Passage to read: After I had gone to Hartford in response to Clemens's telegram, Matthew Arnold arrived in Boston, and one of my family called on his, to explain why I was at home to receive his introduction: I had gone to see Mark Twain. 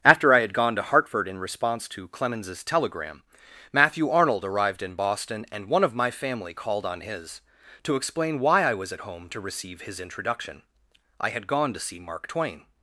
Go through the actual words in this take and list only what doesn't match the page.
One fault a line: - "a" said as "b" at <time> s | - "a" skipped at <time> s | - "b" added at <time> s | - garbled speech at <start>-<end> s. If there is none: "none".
none